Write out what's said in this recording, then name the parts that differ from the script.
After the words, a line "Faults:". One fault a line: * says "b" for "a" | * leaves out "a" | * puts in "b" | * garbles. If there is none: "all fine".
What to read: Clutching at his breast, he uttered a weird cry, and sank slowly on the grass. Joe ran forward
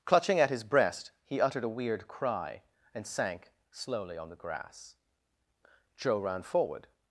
Clutching at his breast, he uttered a weird cry, and sank slowly on the grass. Joe ran forward
Faults:
all fine